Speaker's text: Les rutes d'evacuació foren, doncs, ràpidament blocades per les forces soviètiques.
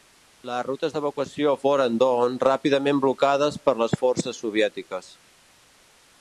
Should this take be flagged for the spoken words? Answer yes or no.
no